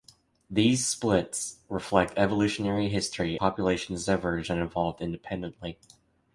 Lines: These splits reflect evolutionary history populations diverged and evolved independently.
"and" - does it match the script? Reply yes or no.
yes